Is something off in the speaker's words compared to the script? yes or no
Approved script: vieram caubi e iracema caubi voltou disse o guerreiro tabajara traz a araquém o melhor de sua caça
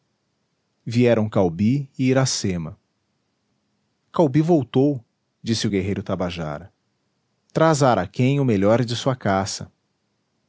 no